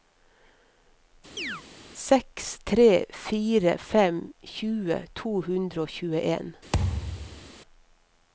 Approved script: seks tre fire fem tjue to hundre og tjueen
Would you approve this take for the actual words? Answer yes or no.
yes